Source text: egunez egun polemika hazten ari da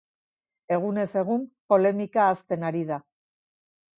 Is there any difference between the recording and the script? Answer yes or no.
no